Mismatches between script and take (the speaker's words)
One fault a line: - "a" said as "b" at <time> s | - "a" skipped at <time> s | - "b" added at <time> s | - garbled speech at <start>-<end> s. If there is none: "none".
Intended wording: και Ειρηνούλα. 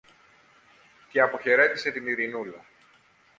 - "αποχαιρέτησε την" added at 1.2 s